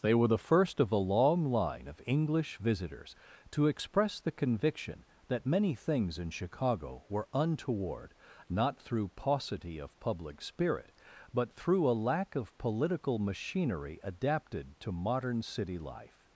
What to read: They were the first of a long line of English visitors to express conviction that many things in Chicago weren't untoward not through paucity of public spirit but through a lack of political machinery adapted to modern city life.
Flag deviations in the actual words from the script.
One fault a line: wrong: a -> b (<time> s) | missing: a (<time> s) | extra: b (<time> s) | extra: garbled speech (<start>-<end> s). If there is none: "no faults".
extra: the (4.2 s)
wrong: weren't -> were (7.1 s)